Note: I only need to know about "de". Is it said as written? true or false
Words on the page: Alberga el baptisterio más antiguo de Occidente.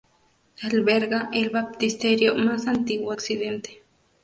false